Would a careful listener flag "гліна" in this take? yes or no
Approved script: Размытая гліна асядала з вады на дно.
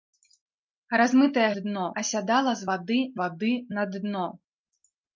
yes